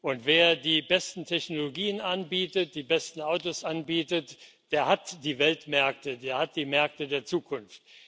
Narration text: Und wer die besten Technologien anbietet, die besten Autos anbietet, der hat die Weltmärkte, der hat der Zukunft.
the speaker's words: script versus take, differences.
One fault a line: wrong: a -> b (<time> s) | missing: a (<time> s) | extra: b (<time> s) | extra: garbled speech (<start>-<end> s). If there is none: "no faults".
extra: die Märkte (6.5 s)